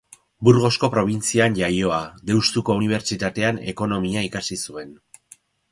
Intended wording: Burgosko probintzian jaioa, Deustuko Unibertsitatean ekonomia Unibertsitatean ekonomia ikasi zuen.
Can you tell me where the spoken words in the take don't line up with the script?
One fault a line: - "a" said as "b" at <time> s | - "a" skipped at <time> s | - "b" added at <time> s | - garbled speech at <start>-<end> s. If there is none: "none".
- "Unibertsitatean ekonomia" skipped at 4.3 s